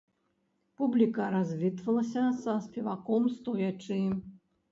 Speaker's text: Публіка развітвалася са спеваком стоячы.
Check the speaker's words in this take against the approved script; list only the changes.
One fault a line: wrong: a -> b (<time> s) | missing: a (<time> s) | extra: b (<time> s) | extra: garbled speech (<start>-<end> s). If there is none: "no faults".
no faults